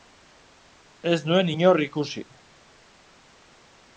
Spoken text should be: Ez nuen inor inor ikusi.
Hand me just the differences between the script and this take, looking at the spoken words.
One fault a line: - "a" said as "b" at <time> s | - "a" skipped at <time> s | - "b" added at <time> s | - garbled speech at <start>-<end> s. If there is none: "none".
- "inor" skipped at 1.8 s